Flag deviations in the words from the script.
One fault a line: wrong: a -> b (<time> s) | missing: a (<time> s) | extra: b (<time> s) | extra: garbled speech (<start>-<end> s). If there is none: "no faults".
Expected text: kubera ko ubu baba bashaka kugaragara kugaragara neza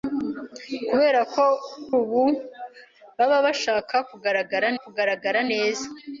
no faults